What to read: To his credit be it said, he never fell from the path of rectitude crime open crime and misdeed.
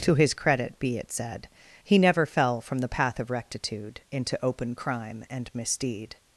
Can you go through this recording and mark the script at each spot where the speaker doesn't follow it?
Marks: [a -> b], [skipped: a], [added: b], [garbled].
To his credit be it said, he never fell from the path of rectitude [crime -> into] open crime and misdeed.